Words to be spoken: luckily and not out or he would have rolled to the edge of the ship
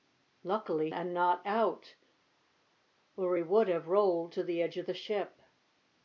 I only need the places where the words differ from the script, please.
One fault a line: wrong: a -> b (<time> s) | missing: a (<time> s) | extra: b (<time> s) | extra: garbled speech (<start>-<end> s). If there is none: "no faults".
no faults